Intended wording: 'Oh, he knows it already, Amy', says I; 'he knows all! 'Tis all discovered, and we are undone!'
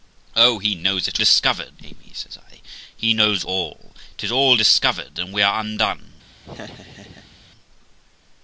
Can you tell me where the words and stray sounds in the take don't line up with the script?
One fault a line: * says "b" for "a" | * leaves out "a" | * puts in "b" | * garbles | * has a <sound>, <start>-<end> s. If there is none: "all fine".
* says "discovered" for "already"
* has a laugh, 6.4-7.4 s